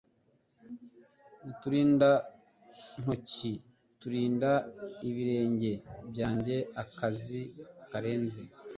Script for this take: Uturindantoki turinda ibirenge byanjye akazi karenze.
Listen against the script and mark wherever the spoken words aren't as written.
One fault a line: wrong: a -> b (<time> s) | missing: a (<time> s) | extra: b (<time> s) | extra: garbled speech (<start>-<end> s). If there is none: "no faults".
no faults